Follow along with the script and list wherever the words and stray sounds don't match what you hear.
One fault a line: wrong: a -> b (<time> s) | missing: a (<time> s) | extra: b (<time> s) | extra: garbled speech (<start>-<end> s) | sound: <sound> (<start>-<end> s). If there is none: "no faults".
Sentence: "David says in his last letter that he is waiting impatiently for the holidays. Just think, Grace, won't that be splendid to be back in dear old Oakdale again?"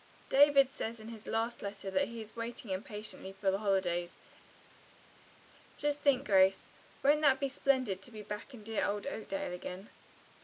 no faults